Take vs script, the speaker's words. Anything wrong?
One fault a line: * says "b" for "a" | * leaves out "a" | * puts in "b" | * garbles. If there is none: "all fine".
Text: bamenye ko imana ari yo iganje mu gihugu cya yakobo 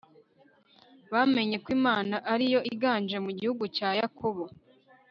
all fine